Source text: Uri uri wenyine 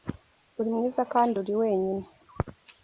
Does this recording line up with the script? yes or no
no